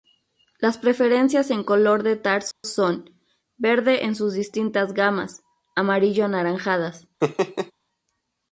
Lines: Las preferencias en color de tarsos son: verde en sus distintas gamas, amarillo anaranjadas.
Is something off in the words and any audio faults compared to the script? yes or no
yes